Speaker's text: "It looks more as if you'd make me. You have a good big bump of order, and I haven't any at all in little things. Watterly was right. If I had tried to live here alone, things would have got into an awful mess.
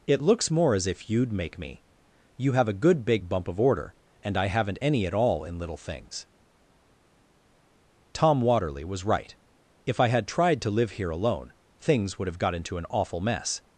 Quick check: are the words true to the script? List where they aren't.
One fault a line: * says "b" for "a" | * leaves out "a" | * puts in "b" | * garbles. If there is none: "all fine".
* puts in "Tom"